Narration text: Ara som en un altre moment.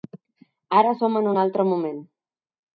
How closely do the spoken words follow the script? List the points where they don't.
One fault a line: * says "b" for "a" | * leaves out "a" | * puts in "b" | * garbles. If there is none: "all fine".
all fine